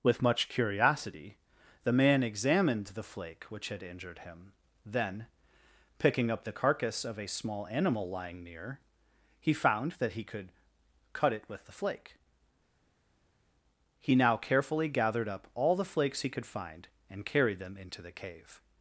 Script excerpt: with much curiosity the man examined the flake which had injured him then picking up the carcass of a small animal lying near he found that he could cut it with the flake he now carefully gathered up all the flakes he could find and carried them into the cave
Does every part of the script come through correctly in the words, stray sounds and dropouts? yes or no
yes